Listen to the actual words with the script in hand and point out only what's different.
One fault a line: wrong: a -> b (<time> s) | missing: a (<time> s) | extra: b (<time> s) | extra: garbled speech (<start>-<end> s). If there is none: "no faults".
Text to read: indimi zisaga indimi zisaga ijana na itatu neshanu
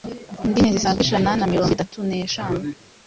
missing: indimi zisaga (1.0 s)
extra: mirongo (1.5 s)